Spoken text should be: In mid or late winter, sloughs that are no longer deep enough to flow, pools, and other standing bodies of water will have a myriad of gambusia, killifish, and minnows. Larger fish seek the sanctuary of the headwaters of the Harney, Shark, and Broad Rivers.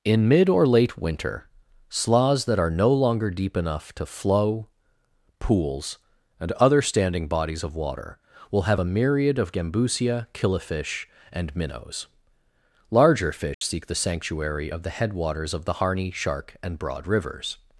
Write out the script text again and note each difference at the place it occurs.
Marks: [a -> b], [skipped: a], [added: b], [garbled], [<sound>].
In mid or late winter, sloughs that are no longer deep enough to flow, pools, and other standing bodies of water will have a myriad of gambusia, killifish, and minnows. Larger fish [dropout] seek the sanctuary of the headwaters of the Harney, Shark, and Broad Rivers.